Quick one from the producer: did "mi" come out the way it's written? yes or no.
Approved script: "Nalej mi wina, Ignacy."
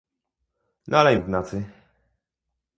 no